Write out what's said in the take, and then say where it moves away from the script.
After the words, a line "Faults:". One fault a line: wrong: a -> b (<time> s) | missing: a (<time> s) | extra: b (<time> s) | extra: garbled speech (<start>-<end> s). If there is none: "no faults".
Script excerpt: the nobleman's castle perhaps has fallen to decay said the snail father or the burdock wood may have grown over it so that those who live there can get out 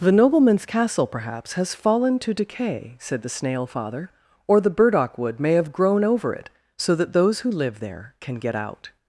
the nobleman's castle perhaps has fallen to decay said the snail father or the burdock wood may have grown over it so that those who live there can get out
Faults:
no faults